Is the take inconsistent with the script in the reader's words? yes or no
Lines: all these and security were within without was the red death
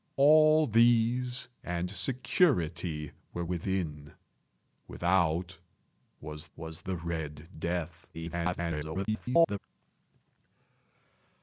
yes